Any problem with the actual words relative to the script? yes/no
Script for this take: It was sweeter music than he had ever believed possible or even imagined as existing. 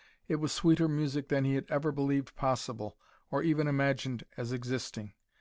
no